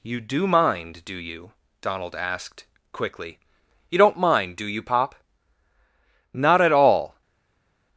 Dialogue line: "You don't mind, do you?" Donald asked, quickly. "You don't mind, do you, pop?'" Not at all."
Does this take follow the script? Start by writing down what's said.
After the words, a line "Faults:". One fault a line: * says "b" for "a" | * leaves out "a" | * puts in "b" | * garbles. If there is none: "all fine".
"You do mind, do you?" Donald asked, quickly. "You don't mind, do you, pop?'" Not at all."
Faults:
* says "do" for "don't"